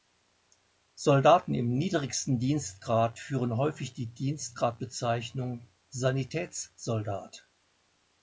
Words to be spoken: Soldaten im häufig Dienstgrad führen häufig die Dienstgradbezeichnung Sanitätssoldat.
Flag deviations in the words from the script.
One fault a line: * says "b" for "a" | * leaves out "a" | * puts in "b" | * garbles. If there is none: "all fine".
* says "niedrigsten" for "häufig"